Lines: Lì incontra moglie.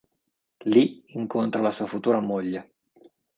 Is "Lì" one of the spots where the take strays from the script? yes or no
no